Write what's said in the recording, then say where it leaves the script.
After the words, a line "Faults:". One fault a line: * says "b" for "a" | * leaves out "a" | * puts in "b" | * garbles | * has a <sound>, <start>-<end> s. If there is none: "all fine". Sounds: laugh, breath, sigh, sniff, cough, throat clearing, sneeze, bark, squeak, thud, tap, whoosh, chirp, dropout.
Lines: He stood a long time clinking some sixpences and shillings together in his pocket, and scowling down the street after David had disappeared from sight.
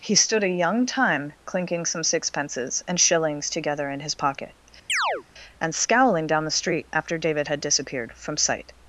He stood a young time clinking some sixpences and shillings together in his pocket, and scowling down the street after David had disappeared from sight.
Faults:
* says "young" for "long"
* has a chirp, 4.9-5.2 s